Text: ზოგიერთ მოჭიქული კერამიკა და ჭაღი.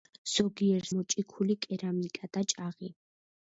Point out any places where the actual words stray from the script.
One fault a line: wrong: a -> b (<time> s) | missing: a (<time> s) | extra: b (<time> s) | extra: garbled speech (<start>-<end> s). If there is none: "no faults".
no faults